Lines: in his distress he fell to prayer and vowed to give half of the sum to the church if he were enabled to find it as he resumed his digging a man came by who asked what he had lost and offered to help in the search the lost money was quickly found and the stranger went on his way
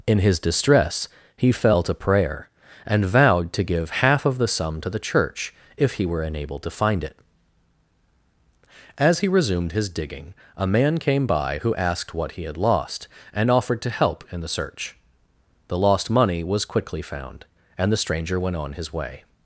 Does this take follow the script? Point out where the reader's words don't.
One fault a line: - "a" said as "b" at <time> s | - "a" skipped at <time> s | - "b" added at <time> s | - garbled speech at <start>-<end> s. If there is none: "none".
none